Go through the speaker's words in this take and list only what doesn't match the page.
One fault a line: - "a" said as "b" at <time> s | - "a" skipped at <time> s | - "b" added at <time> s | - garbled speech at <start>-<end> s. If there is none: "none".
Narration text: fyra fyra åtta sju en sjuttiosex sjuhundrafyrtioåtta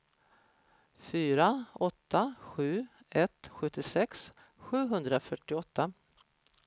- "fyra" skipped at 1.6 s
- "en" said as "ett" at 3.1 s